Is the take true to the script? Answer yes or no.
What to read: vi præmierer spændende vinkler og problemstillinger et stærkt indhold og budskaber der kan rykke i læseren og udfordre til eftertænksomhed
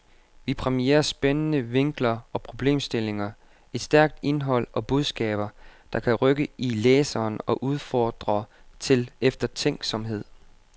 yes